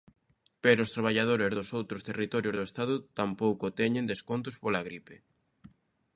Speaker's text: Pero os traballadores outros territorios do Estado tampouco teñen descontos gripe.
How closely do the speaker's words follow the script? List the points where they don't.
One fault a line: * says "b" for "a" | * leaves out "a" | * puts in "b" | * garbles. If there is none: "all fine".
* puts in "dos"
* puts in "pola"